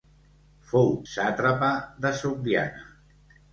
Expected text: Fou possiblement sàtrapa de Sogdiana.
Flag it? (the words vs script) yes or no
yes